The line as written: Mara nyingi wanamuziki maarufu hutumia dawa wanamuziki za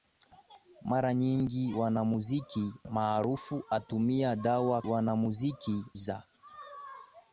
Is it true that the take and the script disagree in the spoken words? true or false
false